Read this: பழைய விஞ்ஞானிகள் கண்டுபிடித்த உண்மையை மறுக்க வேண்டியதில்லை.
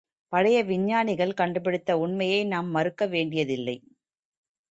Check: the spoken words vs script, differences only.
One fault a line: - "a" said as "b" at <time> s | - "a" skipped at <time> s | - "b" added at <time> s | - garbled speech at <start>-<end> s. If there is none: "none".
- "நாம்" added at 2.5 s